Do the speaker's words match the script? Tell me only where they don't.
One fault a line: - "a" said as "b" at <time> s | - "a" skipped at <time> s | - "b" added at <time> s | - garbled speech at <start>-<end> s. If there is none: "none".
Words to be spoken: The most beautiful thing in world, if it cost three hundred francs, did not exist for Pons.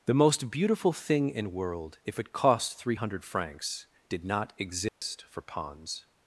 none